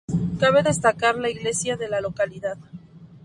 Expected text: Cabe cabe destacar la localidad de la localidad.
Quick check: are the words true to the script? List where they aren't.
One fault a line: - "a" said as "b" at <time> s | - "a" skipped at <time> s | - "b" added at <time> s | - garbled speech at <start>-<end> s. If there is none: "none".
- "cabe" skipped at 0.6 s
- "localidad" said as "iglesia" at 1.3 s